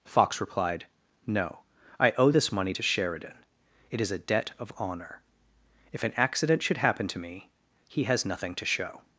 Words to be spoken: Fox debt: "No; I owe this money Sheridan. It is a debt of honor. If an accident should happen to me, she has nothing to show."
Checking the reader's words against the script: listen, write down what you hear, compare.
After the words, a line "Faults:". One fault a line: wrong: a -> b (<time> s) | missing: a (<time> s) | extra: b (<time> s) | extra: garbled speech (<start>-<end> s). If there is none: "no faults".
Fox replied: "No; I owe this money to Sheridan. It is a debt of honor. If an accident should happen to me, he has nothing to show."
Faults:
wrong: debt -> replied (0.4 s)
extra: to (2.7 s)
wrong: she -> he (7.9 s)